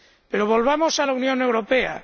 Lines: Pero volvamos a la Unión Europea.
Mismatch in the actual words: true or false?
false